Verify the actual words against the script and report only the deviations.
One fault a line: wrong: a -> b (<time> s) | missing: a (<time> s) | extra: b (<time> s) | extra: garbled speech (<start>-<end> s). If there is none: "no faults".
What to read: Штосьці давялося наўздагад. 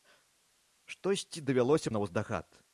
no faults